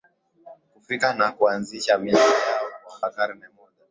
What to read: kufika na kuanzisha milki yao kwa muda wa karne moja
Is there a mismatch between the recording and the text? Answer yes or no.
yes